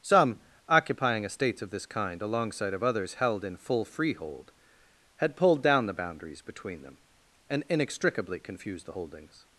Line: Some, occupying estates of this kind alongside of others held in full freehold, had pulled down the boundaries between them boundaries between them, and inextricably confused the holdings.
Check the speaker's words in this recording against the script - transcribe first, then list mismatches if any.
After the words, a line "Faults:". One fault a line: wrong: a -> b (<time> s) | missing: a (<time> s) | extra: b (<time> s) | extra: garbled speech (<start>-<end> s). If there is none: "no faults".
Some, occupying estates of this kind alongside of others held in full freehold, had pulled down the boundaries between them, and inextricably confused the holdings.
Faults:
missing: boundaries between them (7.0 s)